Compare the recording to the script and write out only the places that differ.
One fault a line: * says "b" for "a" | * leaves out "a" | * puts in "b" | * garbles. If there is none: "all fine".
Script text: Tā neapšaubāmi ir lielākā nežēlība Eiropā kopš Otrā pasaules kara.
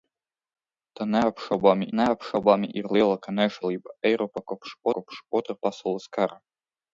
* puts in "neapšaubāmi"
* puts in "kopš"